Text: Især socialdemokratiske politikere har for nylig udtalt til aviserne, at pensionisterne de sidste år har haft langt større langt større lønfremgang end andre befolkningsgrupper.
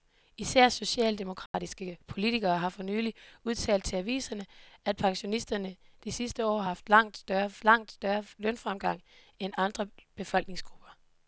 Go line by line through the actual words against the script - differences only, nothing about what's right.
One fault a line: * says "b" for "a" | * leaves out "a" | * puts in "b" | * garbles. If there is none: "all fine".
all fine